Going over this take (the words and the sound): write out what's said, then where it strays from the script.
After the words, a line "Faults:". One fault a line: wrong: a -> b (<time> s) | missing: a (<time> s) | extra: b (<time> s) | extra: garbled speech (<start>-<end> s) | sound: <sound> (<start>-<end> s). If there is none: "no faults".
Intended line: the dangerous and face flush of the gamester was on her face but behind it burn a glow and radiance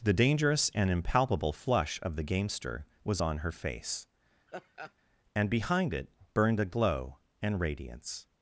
the dangerous and impalpable flush of the gamester was on her face and behind it burned a glow and radiance
Faults:
wrong: face -> impalpable (0.9 s)
sound: laugh (4.5-4.9 s)
wrong: but -> and (5.3 s)
wrong: burn -> burned (6.3 s)